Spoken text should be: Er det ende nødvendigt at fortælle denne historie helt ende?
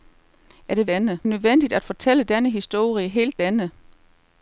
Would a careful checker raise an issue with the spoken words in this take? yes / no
no